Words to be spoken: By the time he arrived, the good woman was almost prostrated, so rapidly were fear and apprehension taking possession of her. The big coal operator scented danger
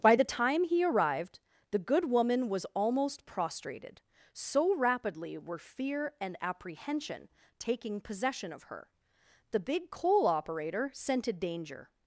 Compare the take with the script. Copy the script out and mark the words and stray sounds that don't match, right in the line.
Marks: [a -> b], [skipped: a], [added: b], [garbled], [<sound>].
By the time he arrived, the good woman was almost prostrated, so rapidly were fear and apprehension taking possession of her. The big coal operator scented danger